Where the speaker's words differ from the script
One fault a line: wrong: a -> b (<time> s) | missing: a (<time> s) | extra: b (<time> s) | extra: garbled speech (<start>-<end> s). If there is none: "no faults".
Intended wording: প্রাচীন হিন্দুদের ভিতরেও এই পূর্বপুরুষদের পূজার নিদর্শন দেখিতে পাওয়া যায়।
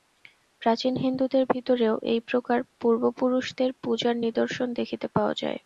extra: প্রকার (2.3 s)